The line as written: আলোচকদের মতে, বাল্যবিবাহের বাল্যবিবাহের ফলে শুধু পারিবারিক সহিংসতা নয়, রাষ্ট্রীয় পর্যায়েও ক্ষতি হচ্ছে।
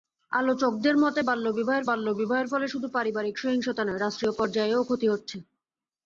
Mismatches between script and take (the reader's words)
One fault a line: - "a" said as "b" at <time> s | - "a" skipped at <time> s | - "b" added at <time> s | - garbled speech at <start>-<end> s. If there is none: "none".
none